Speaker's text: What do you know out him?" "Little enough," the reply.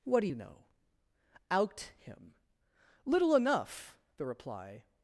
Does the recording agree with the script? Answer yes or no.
yes